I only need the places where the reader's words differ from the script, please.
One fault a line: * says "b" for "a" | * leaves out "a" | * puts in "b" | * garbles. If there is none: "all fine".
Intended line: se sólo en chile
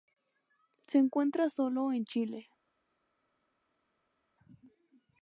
* puts in "encuentra"